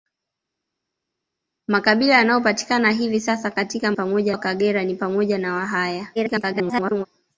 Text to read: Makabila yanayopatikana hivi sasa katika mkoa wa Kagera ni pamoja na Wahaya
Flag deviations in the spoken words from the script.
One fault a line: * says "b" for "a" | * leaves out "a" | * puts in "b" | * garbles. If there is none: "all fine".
* says "pamoja" for "mkoa"
* garbles